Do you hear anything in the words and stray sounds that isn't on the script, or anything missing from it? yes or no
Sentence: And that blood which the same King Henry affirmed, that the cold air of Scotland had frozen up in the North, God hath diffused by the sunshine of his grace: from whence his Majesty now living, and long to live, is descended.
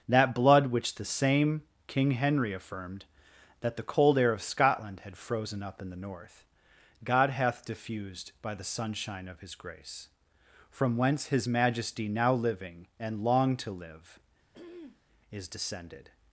yes